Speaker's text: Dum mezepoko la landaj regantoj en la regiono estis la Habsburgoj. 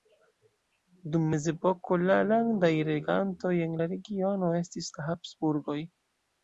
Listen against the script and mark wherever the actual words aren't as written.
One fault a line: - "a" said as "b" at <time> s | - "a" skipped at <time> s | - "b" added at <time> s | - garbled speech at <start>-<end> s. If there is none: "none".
none